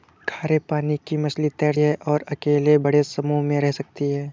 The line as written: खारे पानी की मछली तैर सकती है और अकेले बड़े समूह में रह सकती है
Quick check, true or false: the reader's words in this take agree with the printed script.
false